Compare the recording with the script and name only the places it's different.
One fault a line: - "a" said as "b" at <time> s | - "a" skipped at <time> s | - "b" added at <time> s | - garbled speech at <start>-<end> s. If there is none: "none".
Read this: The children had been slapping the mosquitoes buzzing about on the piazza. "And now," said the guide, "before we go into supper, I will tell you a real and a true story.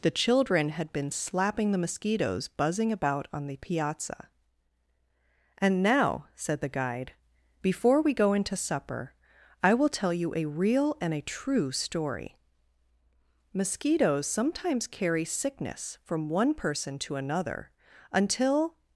- "Mosquitoes sometimes carry sickness from one person to another until" added at 13.5 s